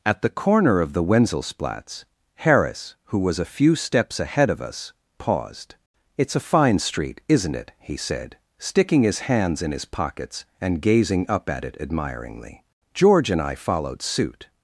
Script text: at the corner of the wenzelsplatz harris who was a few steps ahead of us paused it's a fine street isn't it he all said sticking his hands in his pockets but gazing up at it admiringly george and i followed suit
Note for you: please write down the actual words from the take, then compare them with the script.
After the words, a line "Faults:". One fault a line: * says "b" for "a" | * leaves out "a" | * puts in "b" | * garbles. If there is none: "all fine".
at the corner of the wenzelsplatz harris who was a few steps ahead of us paused it's a fine street isn't it he said sticking his hands in his pockets and gazing up at it admiringly george and i followed suit
Faults:
* leaves out "all"
* says "and" for "but"